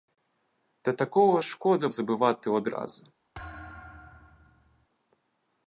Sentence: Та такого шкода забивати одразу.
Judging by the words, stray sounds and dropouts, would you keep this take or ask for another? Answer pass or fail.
fail